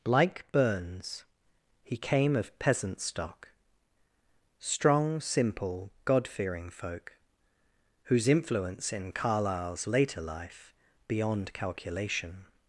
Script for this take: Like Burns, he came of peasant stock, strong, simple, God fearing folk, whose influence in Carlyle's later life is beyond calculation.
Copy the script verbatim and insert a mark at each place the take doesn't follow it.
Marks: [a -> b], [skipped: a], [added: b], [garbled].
Like Burns, he came of peasant stock, strong, simple, God fearing folk, whose influence in Carlyle's later life [skipped: is] beyond calculation.